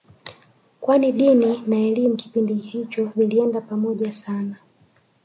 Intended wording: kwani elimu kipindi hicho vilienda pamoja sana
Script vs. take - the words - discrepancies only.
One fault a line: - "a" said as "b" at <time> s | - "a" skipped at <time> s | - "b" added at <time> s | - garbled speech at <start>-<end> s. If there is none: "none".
- "dini na" added at 1.1 s